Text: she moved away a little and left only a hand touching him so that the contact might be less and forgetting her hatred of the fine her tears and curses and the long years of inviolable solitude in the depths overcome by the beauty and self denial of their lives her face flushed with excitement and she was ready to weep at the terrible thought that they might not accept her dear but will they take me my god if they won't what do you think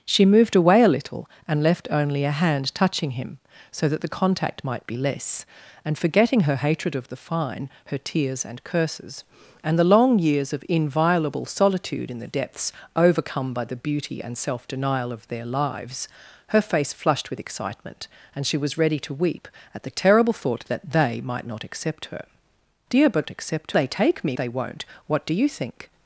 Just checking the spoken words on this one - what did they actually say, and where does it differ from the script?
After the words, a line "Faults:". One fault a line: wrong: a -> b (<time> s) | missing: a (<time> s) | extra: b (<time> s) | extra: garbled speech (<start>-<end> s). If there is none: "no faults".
she moved away a little and left only a hand touching him so that the contact might be less and forgetting her hatred of the fine her tears and curses and the long years of inviolable solitude in the depths overcome by the beauty and self denial of their lives her face flushed with excitement and she was ready to weep at the terrible thought that they might not accept her dear but accept they take me they won't what do you think
Faults:
wrong: will -> accept (23.3 s)
missing: my god if (24.4 s)